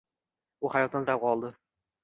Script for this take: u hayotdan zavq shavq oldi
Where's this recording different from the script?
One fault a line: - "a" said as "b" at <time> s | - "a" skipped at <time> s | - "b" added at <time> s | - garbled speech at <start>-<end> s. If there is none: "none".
- "zavq" skipped at 1.1 s